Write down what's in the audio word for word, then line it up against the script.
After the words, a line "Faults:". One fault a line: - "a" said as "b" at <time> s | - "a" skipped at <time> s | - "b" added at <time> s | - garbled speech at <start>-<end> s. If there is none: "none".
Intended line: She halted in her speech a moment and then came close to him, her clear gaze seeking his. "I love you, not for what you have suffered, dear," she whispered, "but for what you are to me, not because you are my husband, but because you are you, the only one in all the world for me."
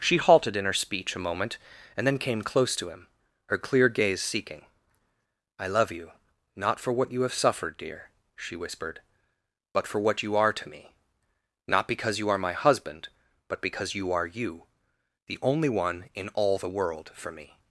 She halted in her speech a moment and then came close to him, her clear gaze seeking. "I love you, not for what you have suffered, dear," she whispered, "but for what you are to me, not because you are my husband, but because you are you, the only one in all the world for me."
Faults:
- "his" skipped at 4.7 s